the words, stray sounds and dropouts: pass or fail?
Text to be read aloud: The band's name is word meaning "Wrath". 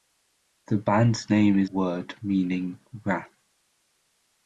pass